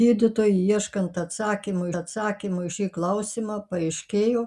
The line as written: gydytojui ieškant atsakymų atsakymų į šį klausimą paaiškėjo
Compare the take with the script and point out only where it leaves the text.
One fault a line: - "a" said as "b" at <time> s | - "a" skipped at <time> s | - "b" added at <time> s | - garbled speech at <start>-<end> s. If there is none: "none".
none